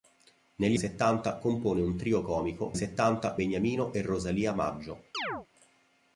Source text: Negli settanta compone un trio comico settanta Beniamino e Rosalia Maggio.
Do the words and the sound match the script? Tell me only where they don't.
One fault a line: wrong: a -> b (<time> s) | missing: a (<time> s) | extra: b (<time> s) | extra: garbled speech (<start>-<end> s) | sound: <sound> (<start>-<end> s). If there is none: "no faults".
sound: chirp (5.1-5.5 s)